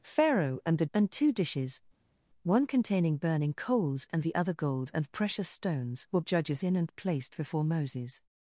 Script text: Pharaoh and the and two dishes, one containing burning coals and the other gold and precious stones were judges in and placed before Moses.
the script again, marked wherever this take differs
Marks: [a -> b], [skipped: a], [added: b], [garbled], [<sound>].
Pharaoh and the and two dishes, one containing burning coals and the other gold and precious stones were judges in and placed before Moses.